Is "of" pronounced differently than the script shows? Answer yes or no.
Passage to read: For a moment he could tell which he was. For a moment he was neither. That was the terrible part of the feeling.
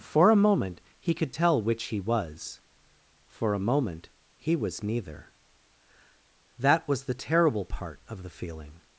no